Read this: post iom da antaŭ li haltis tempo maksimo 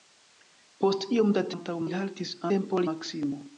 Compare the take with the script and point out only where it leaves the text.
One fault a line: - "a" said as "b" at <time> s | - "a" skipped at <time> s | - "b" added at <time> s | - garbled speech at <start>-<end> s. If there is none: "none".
none